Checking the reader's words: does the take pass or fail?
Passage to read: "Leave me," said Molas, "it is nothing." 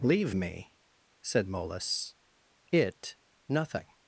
fail